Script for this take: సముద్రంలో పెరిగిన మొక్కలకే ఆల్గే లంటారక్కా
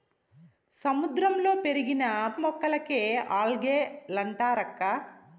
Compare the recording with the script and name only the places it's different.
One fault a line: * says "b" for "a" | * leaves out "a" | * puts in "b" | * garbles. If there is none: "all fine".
all fine